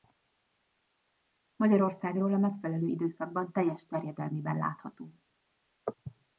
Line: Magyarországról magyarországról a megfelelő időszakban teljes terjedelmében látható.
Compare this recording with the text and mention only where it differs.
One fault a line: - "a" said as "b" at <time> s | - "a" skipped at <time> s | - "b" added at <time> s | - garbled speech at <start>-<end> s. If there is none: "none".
- "magyarországról" skipped at 2.3 s